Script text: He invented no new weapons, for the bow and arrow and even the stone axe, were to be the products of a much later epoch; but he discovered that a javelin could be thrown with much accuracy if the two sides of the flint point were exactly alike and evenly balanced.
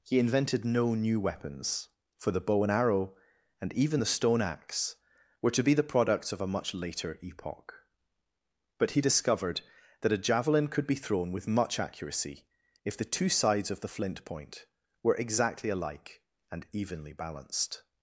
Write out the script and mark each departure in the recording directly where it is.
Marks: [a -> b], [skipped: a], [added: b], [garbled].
He invented no new weapons, for the bow and arrow and even the stone axe, were to be the products of a much later epoch; but he discovered that a javelin could be thrown with much accuracy if the two sides of the flint point were exactly alike and evenly balanced.